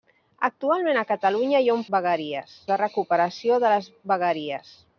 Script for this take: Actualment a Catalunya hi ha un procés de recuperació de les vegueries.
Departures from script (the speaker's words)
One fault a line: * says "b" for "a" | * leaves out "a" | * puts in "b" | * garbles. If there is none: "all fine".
* says "vegueries" for "procés"